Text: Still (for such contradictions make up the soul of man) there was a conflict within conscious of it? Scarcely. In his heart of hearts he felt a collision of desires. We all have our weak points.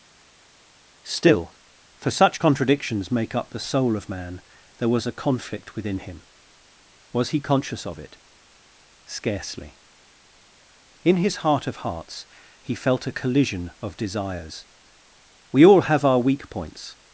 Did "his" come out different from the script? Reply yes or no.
no